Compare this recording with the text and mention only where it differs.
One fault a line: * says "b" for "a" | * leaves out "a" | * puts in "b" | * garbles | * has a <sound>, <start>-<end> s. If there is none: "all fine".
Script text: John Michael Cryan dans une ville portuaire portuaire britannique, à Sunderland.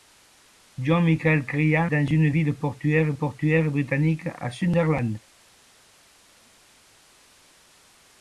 all fine